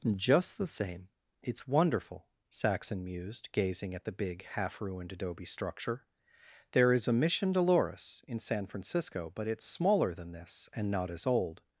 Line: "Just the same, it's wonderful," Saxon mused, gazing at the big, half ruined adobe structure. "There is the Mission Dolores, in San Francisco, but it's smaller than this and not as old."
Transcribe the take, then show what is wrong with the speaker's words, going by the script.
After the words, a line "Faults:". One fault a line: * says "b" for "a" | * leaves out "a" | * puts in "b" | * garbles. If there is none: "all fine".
"Just the same, it's wonderful," Saxon mused, gazing at the big, half ruined adobe structure. "There is a Mission Dolores, in San Francisco, but it's smaller than this and not as old."
Faults:
* says "a" for "the"